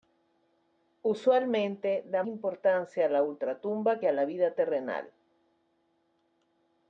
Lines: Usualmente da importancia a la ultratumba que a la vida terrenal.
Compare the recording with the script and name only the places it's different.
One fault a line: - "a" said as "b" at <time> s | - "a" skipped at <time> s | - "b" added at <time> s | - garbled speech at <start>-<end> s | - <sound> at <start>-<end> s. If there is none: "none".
none